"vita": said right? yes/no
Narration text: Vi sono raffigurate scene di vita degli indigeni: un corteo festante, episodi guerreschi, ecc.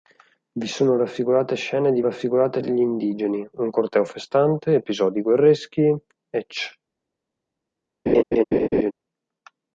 no